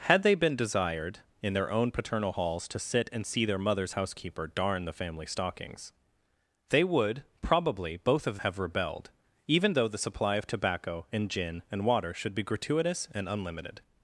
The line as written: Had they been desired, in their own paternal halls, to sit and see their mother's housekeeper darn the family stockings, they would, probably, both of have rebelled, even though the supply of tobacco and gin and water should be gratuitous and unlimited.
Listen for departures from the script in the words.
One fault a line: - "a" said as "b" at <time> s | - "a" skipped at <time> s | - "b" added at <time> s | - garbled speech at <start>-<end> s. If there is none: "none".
none